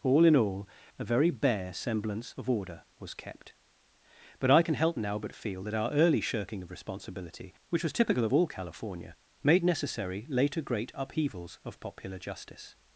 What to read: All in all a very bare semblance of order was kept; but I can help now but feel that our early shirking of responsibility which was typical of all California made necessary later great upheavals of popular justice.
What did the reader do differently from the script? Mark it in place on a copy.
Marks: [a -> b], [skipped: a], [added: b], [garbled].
All in all a very bare semblance of order was kept; but I can help now but feel that our early shirking of responsibility which was typical of all California made necessary later great upheavals of popular justice.